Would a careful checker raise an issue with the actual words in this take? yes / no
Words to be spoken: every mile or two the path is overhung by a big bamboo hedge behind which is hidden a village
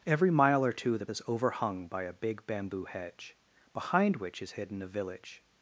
yes